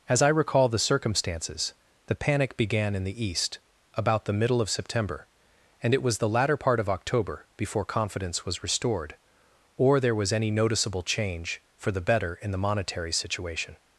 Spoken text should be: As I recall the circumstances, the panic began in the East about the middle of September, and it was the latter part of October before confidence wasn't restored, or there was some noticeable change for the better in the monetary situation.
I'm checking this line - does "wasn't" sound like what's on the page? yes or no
no